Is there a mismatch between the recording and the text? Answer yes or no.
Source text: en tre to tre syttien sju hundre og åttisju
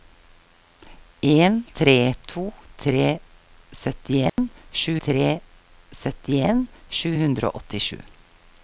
yes